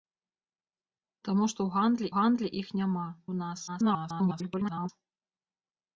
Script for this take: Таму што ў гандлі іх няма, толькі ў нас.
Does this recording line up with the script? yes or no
no